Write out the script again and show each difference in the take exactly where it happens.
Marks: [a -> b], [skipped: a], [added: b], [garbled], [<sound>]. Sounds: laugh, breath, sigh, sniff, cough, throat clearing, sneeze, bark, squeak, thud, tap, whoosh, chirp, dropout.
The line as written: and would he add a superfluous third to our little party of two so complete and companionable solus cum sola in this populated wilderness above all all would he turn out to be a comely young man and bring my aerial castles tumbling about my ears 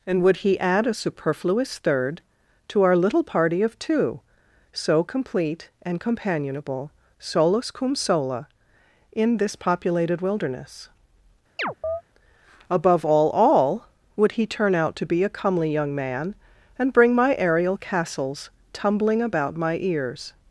and would he add a superfluous third to our little party of two so complete and companionable solus cum sola in this populated wilderness [chirp] above all all would he turn out to be a comely young man and bring my aerial castles tumbling about my ears